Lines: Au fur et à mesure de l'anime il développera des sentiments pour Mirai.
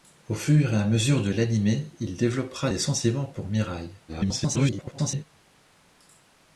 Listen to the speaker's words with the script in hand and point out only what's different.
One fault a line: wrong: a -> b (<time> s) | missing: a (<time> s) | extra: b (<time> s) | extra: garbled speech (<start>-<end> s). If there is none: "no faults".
extra: garbled speech (4.1-5.2 s)